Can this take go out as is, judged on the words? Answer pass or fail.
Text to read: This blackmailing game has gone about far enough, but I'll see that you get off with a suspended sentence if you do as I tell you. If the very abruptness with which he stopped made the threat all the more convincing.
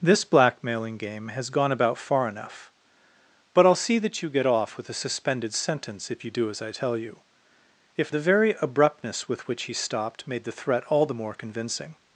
pass